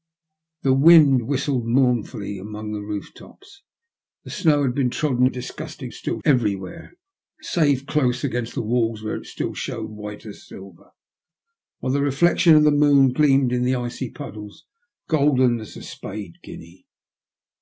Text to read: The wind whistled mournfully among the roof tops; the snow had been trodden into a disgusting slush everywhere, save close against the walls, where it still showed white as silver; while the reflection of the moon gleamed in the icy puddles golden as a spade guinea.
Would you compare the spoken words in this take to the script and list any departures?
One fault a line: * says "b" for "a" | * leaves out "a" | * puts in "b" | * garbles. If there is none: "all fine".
* leaves out "into"
* says "still" for "slush"